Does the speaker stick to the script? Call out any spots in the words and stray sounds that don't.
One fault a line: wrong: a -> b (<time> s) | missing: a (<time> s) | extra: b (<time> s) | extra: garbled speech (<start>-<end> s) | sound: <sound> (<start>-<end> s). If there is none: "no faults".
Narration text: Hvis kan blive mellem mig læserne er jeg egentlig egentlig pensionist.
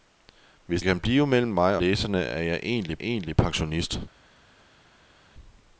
no faults